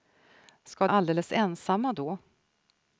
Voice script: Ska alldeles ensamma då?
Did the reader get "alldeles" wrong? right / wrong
right